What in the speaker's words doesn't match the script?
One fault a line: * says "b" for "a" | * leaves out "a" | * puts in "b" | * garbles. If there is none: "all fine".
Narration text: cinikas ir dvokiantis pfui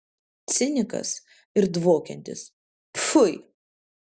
all fine